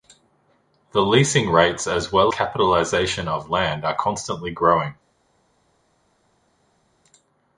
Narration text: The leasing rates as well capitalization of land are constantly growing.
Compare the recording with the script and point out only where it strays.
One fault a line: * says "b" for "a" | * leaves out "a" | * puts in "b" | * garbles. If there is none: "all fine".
all fine